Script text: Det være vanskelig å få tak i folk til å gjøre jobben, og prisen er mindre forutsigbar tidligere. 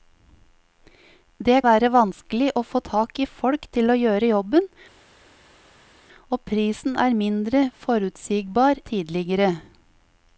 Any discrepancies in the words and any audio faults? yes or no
no